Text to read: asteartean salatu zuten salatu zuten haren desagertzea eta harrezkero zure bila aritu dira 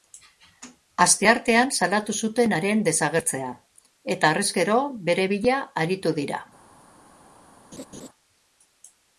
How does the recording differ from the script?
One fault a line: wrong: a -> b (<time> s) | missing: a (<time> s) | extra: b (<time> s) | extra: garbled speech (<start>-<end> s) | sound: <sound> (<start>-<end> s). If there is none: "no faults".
missing: salatu zuten (2.5 s)
wrong: zure -> bere (5.1 s)
sound: laugh (7.7-8.1 s)